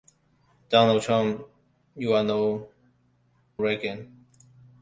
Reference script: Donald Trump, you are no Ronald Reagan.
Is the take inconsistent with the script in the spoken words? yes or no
yes